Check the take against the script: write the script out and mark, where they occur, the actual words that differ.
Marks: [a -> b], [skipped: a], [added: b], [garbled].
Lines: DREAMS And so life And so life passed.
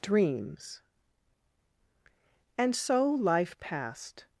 DREAMS And so life [skipped: And so life] passed.